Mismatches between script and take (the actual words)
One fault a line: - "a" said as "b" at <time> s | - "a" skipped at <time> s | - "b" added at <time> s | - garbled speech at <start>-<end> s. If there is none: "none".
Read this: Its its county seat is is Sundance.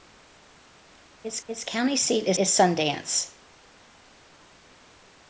none